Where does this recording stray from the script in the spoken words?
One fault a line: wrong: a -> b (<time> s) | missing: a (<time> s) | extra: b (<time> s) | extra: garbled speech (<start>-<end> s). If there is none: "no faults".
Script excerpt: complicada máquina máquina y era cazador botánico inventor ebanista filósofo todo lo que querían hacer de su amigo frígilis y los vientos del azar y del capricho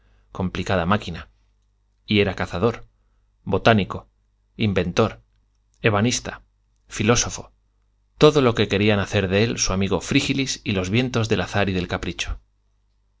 missing: máquina (1.3 s)
extra: él (9.4 s)